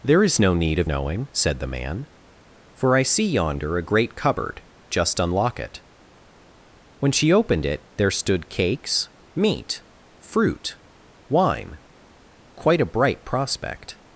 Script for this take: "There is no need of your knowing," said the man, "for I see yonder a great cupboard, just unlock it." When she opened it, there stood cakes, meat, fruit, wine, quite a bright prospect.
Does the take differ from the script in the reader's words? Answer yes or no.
yes